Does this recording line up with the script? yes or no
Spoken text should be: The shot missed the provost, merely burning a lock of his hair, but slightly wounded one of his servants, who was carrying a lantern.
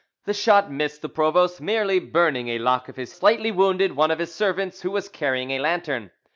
no